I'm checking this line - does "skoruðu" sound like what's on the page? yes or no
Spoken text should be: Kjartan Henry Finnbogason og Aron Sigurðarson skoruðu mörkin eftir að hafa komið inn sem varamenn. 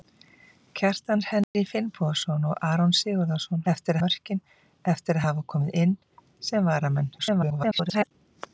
no